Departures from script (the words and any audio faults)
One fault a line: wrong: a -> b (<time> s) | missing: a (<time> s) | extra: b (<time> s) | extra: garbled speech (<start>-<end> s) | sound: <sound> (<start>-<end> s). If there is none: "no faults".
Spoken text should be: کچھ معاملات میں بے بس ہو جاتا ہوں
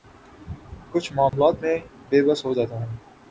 sound: dropout (1.3-1.3 s)